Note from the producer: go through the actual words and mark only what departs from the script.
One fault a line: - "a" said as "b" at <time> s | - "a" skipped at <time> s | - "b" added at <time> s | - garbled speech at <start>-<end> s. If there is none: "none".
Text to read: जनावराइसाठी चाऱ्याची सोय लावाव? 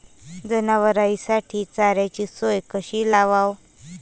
- "कशी" added at 2.7 s